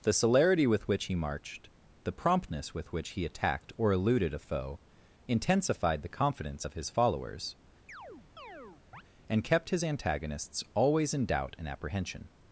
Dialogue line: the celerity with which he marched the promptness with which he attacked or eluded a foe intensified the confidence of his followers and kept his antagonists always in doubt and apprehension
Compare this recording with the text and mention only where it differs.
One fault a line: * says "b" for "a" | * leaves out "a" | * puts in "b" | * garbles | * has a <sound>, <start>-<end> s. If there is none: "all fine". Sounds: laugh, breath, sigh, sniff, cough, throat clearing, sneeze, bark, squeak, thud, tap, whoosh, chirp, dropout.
* has a chirp, 7.9-9.0 s